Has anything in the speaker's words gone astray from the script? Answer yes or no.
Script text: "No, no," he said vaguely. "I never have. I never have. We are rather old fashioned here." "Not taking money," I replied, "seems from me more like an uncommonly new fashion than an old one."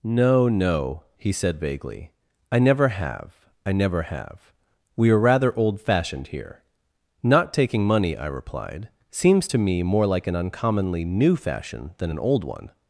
yes